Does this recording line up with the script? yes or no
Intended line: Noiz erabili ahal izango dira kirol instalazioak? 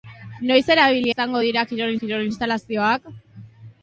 no